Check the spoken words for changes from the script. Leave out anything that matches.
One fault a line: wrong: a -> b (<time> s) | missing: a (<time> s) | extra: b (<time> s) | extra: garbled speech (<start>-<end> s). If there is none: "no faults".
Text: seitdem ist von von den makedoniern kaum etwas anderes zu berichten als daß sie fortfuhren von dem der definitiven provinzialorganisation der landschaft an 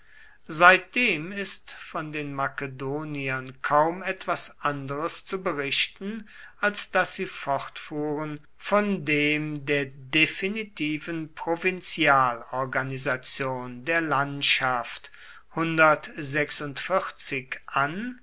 missing: von (2.1 s)